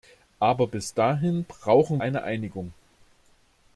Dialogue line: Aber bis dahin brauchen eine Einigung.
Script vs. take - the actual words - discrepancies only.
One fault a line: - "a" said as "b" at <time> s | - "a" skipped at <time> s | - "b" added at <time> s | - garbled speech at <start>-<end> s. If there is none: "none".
none